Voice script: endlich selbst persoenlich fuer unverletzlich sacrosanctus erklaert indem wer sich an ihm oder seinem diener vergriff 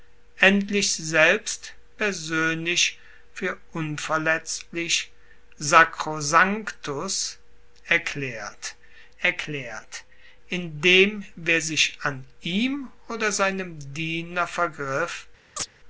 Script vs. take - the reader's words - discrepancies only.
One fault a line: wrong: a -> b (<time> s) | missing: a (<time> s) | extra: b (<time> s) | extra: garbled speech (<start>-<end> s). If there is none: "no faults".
extra: erklaert (9.2 s)